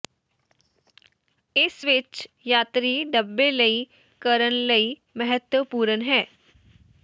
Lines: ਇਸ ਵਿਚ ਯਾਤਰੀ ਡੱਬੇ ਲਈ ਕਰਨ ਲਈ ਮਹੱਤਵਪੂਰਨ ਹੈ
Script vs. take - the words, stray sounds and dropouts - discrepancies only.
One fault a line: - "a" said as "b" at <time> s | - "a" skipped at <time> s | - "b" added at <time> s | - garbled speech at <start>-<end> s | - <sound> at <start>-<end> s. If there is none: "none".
none